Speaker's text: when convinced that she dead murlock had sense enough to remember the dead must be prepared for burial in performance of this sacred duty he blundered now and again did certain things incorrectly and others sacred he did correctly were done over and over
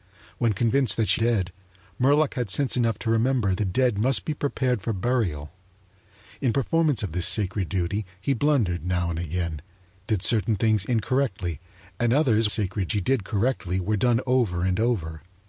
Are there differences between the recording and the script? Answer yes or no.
no